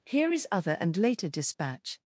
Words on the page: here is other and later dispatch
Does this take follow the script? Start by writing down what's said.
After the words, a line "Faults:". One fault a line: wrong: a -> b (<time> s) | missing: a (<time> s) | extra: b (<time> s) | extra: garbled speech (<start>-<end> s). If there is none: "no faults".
here is other and later dispatch
Faults:
no faults